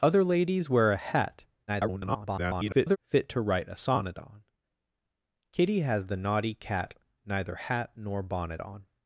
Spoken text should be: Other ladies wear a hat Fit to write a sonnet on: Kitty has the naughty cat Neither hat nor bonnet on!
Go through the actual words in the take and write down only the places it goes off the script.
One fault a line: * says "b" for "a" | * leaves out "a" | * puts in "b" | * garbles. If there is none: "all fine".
* garbles